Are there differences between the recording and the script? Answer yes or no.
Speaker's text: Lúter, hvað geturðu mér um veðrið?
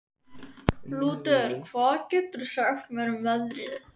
yes